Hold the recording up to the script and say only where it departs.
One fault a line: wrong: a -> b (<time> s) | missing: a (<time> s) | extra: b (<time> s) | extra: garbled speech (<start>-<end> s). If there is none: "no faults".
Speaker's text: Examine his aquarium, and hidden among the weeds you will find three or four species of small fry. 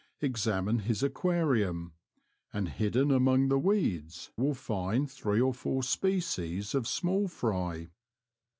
missing: you (4.3 s)